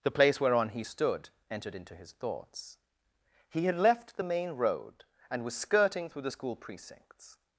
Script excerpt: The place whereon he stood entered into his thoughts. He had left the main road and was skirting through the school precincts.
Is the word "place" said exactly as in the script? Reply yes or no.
yes